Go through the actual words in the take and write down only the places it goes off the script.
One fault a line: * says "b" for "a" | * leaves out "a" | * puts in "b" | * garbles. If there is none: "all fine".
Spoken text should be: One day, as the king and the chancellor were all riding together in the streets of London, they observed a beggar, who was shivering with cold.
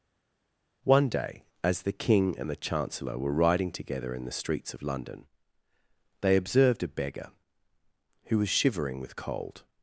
* leaves out "all"